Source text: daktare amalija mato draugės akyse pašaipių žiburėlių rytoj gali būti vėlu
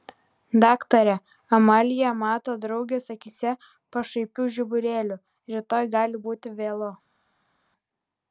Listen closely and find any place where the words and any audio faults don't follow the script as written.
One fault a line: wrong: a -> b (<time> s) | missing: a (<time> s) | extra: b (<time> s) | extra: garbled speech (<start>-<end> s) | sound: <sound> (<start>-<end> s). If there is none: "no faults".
no faults